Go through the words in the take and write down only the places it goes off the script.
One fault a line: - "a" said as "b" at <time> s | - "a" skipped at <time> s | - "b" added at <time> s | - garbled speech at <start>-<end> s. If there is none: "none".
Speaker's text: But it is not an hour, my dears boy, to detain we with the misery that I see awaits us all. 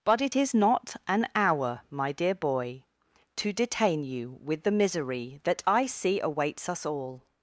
- "dears" said as "dear" at 2.1 s
- "we" said as "you" at 4.0 s